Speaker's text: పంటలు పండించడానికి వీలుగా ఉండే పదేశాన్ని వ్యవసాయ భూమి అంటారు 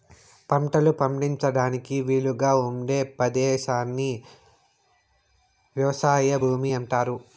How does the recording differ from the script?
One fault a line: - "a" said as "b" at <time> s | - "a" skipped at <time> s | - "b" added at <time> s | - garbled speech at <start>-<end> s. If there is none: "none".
none